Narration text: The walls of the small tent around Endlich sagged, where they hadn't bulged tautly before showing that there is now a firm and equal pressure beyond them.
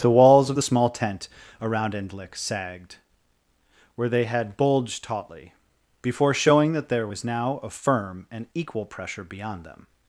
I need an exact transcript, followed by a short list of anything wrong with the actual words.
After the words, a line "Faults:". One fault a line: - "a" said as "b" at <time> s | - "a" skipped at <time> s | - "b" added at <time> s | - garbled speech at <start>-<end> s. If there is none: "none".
The walls of the small tent around Endlich sagged, where they had bulged tautly before showing that there was now a firm and equal pressure beyond them.
Faults:
- "hadn't" said as "had" at 4.3 s
- "is" said as "was" at 7.1 s